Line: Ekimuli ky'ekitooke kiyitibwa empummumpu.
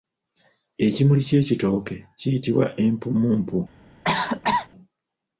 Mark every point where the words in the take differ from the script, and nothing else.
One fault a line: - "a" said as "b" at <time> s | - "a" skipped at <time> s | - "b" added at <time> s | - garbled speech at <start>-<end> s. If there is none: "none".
none